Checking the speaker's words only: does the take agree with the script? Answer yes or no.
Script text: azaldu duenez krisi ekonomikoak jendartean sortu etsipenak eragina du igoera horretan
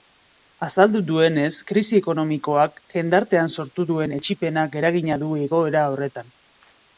no